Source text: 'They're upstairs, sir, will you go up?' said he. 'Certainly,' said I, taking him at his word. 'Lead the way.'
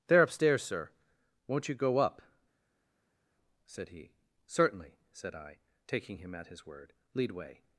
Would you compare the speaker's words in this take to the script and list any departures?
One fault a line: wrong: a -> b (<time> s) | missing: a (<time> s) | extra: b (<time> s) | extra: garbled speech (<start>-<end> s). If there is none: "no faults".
wrong: will -> won't (1.5 s)
missing: the (7.3 s)